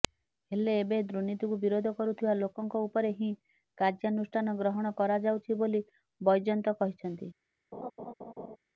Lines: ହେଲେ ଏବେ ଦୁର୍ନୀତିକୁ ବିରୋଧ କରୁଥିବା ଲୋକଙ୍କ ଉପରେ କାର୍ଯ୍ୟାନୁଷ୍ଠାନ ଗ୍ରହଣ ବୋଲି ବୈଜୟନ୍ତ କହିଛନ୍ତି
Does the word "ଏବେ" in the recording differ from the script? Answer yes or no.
no